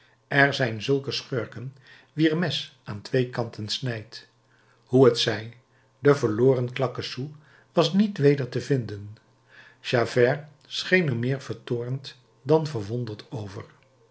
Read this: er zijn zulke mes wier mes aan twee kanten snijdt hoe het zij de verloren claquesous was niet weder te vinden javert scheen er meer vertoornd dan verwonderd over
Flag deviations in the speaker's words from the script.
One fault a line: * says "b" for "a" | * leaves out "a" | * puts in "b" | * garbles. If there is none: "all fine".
* says "schurken" for "mes"